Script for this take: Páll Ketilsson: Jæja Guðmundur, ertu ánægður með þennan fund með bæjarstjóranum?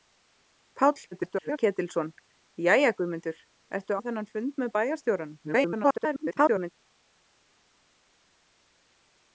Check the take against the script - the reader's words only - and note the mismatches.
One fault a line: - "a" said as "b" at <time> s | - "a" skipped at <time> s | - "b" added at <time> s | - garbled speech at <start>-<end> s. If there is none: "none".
- garbled speech at 1.1-1.6 s
- "ánægður" skipped at 4.0 s
- garbled speech at 5.4-6.7 s